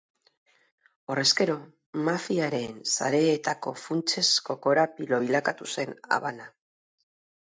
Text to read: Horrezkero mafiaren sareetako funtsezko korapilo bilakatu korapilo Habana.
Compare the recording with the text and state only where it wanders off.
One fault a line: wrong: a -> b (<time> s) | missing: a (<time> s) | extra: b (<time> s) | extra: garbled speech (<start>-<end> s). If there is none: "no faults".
wrong: korapilo -> zen (5.8 s)